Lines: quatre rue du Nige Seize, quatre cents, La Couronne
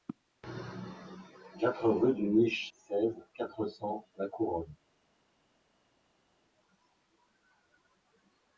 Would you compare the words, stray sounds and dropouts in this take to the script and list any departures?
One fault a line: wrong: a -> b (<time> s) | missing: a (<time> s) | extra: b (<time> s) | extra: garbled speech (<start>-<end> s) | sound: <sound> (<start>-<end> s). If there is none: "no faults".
no faults